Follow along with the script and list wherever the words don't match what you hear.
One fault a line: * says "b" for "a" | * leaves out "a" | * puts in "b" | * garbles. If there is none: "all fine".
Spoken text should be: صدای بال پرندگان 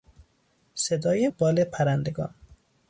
all fine